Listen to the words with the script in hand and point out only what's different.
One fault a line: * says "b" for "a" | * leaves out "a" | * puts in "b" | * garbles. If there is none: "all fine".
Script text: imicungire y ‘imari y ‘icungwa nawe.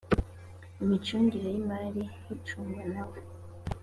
all fine